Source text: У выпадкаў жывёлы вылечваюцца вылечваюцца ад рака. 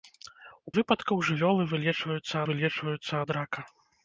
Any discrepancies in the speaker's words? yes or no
no